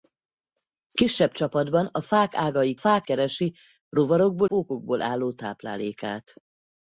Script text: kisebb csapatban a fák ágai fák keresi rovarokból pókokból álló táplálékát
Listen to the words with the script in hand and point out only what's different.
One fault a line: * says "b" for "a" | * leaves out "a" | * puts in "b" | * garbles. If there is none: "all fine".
all fine